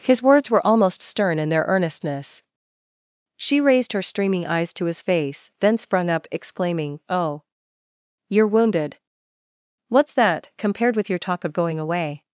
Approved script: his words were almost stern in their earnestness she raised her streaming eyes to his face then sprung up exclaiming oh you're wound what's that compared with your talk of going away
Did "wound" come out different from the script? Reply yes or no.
yes